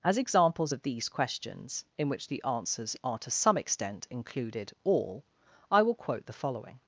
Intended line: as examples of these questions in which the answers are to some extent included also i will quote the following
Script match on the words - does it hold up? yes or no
no